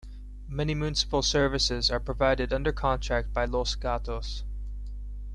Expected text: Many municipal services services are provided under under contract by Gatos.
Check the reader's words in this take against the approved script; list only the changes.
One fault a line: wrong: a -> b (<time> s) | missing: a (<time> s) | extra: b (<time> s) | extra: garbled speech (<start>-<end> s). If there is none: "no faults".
missing: services (1.9 s)
missing: under (2.7 s)
extra: Los (3.4 s)